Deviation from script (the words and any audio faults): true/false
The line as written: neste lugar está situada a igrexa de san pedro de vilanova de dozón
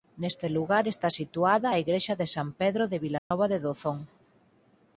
true